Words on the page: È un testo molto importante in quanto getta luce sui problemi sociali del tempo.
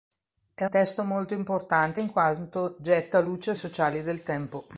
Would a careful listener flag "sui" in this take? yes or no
yes